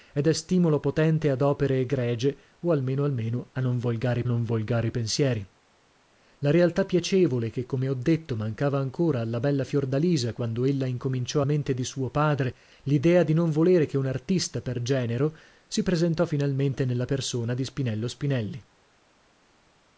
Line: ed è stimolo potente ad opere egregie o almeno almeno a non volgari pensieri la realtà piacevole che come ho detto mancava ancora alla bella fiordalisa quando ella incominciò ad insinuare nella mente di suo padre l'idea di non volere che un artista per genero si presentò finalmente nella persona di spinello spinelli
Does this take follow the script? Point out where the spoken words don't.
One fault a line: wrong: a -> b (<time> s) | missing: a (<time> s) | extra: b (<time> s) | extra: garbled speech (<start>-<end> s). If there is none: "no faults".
extra: non volgari (4.3 s)
missing: ad insinuare nella (11.4 s)